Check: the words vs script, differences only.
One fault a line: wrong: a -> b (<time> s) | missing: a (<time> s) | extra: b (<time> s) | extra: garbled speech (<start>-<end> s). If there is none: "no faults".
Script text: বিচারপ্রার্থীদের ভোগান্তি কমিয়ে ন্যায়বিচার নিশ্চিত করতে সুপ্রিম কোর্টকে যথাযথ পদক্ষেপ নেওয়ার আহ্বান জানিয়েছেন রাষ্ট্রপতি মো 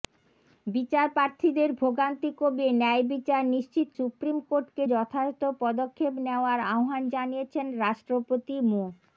missing: করতে (3.9 s)